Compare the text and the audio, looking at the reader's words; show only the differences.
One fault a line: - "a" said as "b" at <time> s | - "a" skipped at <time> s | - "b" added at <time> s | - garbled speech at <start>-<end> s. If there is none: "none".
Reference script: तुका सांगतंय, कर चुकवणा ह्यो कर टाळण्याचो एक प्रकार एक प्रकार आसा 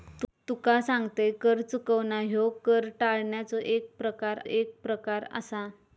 none